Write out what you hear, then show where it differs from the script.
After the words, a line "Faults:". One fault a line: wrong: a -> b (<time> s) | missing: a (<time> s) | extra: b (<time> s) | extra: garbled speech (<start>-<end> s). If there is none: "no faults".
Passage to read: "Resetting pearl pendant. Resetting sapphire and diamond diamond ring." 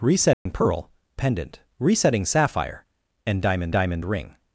"Resetting pearl pendant. Resetting sapphire and diamond diamond ring."
Faults:
no faults